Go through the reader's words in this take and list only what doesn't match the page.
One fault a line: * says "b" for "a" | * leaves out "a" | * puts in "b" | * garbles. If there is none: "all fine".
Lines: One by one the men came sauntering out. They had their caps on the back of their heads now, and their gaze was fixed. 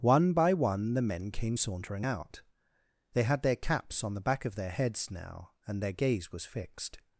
all fine